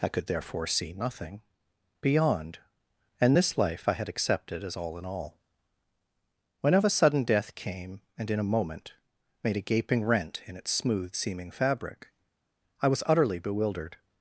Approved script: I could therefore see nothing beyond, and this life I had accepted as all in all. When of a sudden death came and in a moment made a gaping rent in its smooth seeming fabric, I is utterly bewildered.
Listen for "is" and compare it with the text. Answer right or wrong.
wrong